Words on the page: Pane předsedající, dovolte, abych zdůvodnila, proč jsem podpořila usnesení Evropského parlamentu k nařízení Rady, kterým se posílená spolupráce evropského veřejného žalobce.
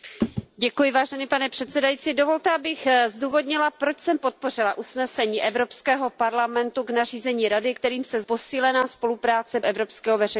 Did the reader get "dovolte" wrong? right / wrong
right